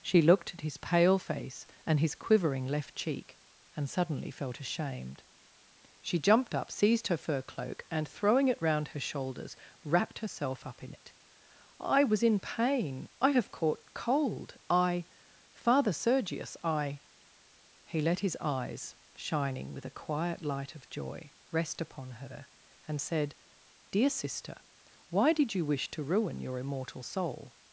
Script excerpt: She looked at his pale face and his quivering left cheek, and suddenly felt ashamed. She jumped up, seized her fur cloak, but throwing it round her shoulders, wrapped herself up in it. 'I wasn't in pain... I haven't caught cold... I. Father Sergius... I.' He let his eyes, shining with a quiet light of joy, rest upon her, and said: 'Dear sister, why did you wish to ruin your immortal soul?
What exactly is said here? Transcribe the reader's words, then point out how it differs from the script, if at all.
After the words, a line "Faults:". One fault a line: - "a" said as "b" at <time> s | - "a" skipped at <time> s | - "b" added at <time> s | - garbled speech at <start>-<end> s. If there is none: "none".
She looked at his pale face and his quivering left cheek, and suddenly felt ashamed. She jumped up, seized her fur cloak, and throwing it round her shoulders, wrapped herself up in it. 'I was in pain... I have caught cold... I. Father Sergius... I.' He let his eyes, shining with a quiet light of joy, rest upon her, and said: 'Dear sister, why did you wish to ruin your immortal soul?
Faults:
- "but" said as "and" at 7.9 s
- "wasn't" said as "was" at 12.0 s
- "haven't" said as "have" at 13.3 s